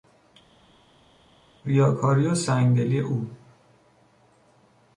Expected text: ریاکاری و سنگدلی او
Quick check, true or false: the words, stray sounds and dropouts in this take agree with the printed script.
true